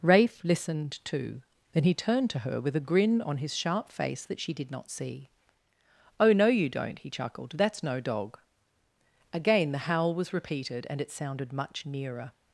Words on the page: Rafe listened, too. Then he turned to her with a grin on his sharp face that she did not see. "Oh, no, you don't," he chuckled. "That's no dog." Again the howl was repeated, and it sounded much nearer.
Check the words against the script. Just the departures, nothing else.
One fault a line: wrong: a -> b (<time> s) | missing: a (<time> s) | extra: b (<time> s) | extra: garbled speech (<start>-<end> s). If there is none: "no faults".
no faults